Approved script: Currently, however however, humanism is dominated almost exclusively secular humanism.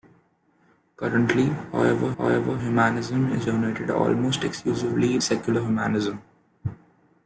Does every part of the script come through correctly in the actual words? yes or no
yes